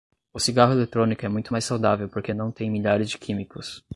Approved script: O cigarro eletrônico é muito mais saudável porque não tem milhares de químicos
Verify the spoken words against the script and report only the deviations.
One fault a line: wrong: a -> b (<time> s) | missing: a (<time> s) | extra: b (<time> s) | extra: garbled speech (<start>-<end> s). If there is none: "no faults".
no faults